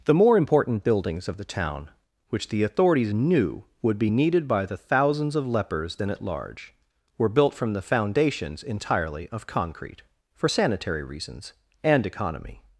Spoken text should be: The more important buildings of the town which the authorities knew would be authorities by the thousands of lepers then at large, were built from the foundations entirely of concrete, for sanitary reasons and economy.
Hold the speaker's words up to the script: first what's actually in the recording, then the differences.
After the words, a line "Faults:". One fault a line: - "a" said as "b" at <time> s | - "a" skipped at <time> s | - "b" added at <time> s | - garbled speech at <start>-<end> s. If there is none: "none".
The more important buildings of the town which the authorities knew would be needed by the thousands of lepers then at large, were built from the foundations entirely of concrete, for sanitary reasons and economy.
Faults:
- "authorities" said as "needed" at 4.1 s